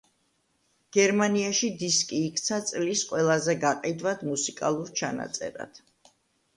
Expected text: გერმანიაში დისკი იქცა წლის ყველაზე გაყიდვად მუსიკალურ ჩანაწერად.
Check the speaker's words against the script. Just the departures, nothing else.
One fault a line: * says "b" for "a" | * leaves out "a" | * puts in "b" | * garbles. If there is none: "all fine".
all fine